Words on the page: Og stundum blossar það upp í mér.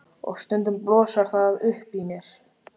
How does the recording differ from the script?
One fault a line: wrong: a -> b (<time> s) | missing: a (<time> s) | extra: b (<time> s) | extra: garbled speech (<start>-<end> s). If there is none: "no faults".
no faults